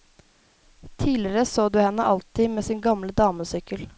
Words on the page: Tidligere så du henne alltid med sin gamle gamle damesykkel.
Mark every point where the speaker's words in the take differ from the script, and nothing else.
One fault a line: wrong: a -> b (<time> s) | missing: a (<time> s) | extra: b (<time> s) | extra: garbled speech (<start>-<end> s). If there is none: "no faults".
missing: gamle (3.1 s)